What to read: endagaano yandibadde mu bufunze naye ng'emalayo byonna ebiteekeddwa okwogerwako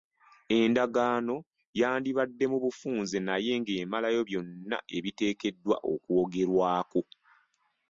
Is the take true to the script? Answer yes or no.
yes